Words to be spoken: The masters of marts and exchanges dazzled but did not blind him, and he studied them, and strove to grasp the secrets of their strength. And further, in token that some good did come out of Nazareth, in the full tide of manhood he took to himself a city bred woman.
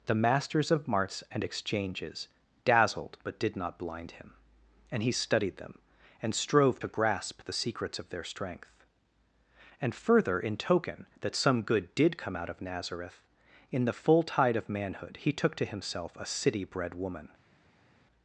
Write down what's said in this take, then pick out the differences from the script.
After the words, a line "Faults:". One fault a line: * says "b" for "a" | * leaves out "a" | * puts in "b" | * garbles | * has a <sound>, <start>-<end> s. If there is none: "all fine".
The masters of marts and exchanges dazzled but did not blind him, and he studied them, and strove to grasp the secrets of their strength. And further, in token that some good did come out of Nazareth, in the full tide of manhood he took to himself a city bred woman.
Faults:
all fine